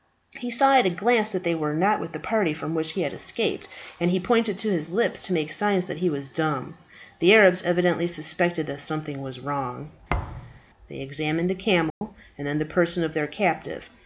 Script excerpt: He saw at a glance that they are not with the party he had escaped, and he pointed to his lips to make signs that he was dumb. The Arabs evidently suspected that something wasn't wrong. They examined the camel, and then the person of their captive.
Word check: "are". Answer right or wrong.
wrong